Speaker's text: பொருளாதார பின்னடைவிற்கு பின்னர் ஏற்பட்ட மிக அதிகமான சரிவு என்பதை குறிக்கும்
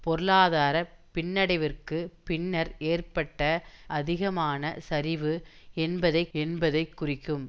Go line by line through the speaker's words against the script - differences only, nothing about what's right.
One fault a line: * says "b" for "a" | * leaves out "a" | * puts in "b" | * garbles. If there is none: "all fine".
* leaves out "மிக"
* puts in "என்பதை"